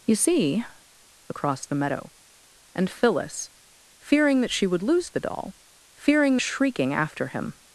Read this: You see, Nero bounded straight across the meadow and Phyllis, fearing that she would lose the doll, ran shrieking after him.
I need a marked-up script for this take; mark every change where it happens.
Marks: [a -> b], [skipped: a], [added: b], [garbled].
You see, [skipped: Nero bounded straight] across the meadow and Phyllis, fearing that she would lose the doll, [ran -> fearing] shrieking after him.